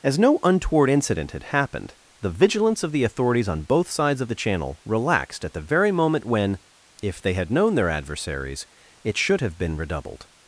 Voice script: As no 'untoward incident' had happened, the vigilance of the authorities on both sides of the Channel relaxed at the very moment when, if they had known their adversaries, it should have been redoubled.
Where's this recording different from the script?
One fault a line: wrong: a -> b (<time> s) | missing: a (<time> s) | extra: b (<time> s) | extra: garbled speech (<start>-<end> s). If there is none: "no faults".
no faults